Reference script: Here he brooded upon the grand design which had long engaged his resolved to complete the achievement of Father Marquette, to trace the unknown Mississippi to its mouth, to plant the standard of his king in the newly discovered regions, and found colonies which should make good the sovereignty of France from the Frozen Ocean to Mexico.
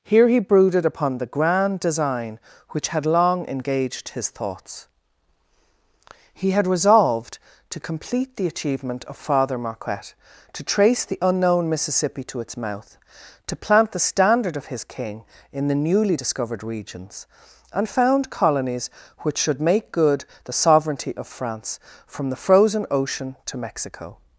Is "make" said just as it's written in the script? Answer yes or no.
yes